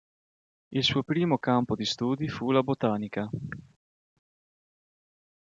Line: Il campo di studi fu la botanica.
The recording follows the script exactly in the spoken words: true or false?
false